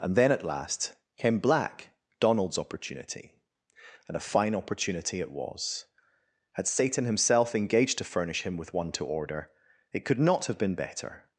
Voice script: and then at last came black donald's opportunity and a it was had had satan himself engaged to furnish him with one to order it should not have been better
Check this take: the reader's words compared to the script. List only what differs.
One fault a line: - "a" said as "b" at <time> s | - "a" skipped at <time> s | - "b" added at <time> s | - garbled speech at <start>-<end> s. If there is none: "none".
- "fine opportunity" added at 4.2 s
- "had" skipped at 6.7 s
- "should" said as "could" at 10.1 s